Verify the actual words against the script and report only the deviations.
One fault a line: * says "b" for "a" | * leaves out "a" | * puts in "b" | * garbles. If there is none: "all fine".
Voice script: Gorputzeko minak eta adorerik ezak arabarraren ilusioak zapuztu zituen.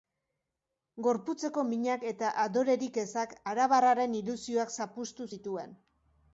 all fine